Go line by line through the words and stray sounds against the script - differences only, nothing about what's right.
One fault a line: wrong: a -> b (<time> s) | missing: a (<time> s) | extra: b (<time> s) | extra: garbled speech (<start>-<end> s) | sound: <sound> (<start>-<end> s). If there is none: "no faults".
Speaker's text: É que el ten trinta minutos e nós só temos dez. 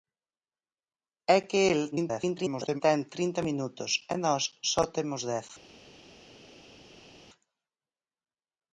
extra: garbled speech (1.9-2.8 s)